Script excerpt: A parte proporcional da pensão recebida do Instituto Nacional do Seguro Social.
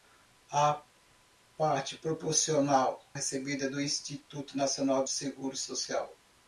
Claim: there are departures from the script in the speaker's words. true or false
true